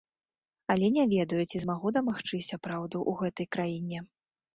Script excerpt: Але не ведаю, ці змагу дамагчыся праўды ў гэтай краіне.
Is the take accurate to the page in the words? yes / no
yes